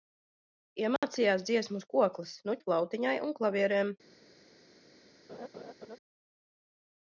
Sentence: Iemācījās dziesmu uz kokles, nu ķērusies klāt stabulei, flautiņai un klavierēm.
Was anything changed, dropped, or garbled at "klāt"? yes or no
yes